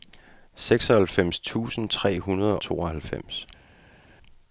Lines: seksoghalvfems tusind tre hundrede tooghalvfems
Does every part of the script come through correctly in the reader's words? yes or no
yes